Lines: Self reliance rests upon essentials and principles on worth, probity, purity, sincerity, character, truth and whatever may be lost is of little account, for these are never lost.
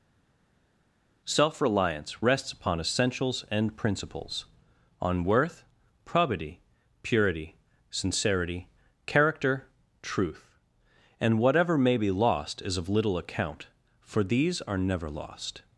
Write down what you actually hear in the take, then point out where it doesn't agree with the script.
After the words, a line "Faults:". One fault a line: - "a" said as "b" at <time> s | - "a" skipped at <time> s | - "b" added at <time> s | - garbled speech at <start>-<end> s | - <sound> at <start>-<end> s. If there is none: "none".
Self reliance rests upon essentials and principles on worth, probity, purity, sincerity, character, truth and whatever may be lost is of little account, for these are never lost.
Faults:
none